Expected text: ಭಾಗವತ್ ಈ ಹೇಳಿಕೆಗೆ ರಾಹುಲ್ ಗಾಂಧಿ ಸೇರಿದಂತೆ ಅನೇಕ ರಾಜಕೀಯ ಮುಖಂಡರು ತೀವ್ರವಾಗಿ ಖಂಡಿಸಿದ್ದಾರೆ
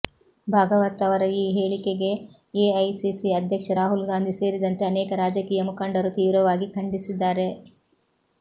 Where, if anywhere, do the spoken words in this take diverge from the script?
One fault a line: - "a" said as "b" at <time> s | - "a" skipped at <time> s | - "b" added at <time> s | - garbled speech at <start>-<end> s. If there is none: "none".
- "ಅವರ" added at 1.1 s
- "ಎಐಸಿಸಿ ಅಧ್ಯಕ್ಷ" added at 2.6 s